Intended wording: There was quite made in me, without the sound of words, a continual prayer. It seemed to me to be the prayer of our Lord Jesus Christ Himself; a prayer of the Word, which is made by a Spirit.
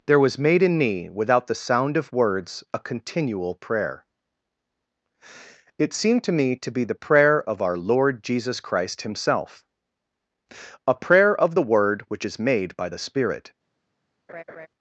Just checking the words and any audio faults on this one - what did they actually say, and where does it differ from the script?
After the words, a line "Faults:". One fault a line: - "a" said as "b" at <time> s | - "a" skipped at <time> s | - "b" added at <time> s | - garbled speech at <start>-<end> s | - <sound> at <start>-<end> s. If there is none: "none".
There was made in me, without the sound of words, a continual prayer. It seemed to me to be the prayer of our Lord Jesus Christ Himself; a prayer of the Word, which is made by the Spirit.
Faults:
- "quite" skipped at 0.4 s
- "a" said as "the" at 12.9 s
- laugh at 14.3-14.7 s